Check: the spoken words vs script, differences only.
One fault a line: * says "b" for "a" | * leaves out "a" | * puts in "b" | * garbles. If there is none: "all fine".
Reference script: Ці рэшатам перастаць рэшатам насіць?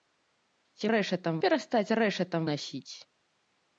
all fine